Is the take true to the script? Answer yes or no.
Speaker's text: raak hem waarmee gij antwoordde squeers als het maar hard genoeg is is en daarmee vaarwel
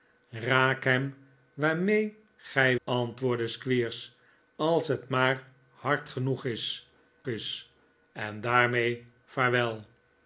yes